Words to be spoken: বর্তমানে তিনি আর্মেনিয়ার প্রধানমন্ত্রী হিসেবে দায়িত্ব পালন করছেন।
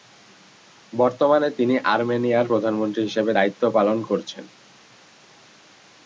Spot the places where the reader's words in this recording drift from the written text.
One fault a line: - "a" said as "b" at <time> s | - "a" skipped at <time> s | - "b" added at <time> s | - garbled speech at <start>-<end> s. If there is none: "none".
none